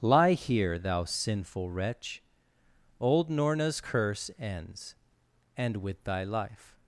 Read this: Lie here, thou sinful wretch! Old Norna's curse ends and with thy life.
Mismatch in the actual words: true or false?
false